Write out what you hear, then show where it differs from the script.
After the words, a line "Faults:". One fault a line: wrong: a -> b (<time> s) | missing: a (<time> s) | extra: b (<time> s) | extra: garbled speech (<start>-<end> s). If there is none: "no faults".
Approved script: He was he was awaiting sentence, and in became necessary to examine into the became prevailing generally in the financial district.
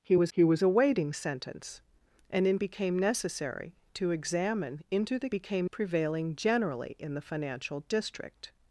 He was he was awaiting sentence, and in became necessary to examine into the became prevailing generally in the financial district.
Faults:
no faults